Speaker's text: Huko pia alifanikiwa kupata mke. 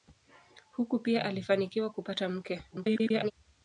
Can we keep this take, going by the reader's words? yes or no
no